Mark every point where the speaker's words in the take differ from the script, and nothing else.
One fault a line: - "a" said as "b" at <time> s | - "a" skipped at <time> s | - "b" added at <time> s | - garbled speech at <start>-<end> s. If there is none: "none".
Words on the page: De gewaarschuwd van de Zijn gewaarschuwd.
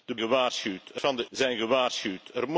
none